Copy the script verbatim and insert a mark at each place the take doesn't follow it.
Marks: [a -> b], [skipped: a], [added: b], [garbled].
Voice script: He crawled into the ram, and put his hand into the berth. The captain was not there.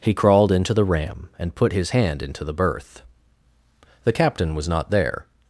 He crawled into the ram, and put his hand into the berth. The captain was not there.